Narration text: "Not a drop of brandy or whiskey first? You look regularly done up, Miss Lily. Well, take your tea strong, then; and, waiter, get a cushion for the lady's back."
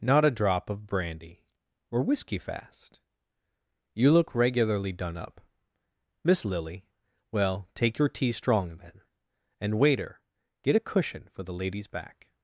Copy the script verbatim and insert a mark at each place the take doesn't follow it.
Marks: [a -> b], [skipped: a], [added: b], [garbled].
"Not a drop of brandy or whiskey [first? -> fast] You look regularly done up, Miss Lily. Well, take your tea strong, then; and, waiter, get a cushion for the lady's back."